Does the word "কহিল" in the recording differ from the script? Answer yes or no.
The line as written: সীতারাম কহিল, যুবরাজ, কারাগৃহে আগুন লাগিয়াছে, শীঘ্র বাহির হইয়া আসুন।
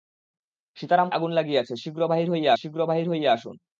yes